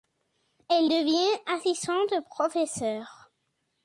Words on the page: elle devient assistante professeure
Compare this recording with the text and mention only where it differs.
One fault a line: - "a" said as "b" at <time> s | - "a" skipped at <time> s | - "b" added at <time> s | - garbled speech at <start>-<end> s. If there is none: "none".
none